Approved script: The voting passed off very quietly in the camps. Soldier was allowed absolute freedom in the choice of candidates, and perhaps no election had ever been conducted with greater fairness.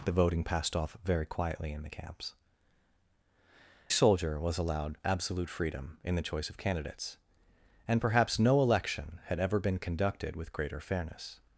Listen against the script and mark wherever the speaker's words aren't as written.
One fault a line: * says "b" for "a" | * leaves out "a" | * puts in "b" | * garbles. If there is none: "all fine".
all fine